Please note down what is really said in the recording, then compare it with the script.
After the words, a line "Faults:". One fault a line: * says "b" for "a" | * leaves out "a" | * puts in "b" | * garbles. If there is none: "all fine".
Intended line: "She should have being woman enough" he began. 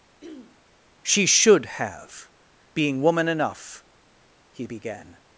"She should have being woman enough" he began.
Faults:
all fine